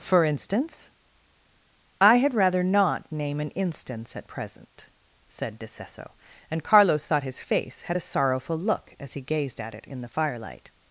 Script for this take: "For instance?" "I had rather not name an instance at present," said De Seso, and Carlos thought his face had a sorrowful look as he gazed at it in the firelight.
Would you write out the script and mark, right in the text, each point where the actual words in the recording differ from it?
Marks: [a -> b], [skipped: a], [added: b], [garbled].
"For instance?" "I had rather not name an instance at present," said De Seso, and Carlos thought his face had a sorrowful look as he gazed at it in the firelight.